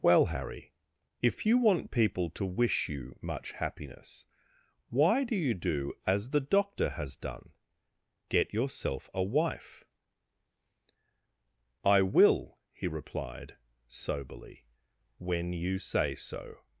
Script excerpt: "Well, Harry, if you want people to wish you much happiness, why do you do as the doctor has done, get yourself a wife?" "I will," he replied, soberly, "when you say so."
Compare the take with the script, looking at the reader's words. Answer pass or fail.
pass